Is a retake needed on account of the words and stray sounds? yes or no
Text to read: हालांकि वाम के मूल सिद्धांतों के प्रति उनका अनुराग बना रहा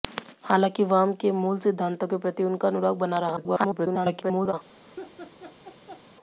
yes